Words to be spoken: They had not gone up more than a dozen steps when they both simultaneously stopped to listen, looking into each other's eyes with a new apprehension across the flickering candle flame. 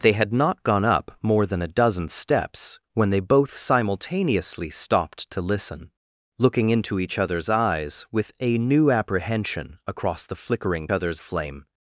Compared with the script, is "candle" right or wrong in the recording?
wrong